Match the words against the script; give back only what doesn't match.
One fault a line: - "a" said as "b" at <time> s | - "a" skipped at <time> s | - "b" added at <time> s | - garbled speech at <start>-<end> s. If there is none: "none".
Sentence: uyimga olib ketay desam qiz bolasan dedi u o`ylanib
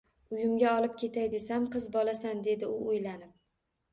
none